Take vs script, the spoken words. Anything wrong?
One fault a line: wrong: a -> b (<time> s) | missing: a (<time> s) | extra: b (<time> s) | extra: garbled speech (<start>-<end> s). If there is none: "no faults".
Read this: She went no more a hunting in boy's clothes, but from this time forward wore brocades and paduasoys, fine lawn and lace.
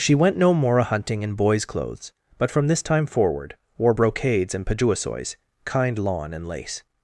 wrong: fine -> kind (5.7 s)